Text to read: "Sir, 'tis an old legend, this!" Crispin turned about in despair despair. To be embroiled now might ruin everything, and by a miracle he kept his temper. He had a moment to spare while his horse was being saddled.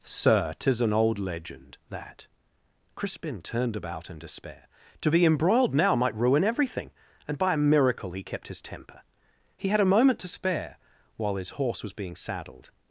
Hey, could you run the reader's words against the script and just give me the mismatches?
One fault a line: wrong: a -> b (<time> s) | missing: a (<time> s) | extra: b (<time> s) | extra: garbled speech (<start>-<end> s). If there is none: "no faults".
wrong: this -> that (1.9 s)
missing: despair (4.7 s)